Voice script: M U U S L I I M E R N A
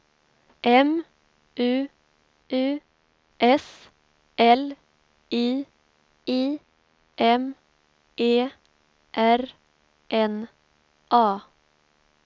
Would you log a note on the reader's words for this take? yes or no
no